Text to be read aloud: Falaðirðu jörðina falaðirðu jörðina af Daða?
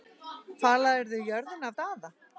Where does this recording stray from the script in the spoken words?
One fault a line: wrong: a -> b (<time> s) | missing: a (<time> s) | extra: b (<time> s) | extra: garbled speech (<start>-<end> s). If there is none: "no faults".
missing: falaðirðu jörðina (1.7 s)